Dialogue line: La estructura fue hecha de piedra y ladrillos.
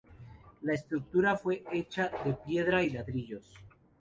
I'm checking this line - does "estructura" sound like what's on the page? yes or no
yes